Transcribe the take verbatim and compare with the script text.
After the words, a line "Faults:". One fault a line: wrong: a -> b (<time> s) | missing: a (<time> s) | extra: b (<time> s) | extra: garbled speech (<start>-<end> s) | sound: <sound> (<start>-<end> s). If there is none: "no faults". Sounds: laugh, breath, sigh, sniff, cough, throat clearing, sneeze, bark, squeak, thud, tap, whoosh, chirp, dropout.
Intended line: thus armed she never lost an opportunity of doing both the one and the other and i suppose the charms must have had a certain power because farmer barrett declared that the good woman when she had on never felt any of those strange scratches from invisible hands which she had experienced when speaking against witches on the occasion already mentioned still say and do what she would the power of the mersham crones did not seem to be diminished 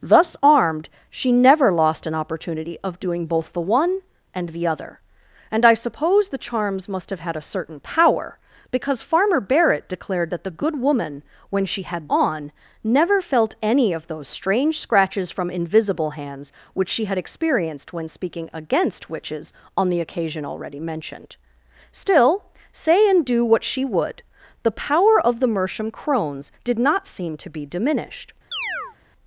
thus armed she never lost an opportunity of doing both the one and the other and i suppose the charms must have had a certain power because farmer barrett declared that the good woman when she had on never felt any of those strange scratches from invisible hands which she had experienced when speaking against witches on the occasion already mentioned still say and do what she would the power of the mersham crones did not seem to be diminished
Faults:
sound: chirp (28.5-29.0 s)